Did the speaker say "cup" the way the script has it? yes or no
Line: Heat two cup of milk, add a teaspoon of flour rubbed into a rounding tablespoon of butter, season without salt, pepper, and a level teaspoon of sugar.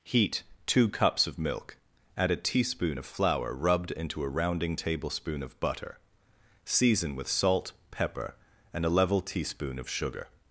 no